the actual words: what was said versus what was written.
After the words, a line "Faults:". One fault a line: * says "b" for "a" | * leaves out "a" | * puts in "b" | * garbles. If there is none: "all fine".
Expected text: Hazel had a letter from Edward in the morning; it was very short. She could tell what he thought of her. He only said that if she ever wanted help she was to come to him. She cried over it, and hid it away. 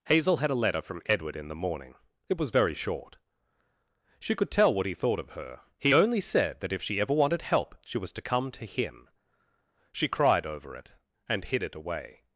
Hazel had a letter from Edward in the morning; it was very short. She could tell what he thought of her. He only said that if she ever wanted help she was to come to him. She cried over it, and hid it away.
Faults:
all fine